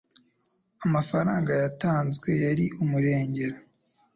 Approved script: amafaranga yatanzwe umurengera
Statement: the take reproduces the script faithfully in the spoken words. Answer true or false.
false